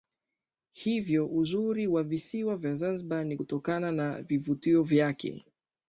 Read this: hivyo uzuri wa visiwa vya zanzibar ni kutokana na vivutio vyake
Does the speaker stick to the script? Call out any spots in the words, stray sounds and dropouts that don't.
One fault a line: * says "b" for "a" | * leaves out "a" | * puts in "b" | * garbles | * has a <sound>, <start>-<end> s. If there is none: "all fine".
all fine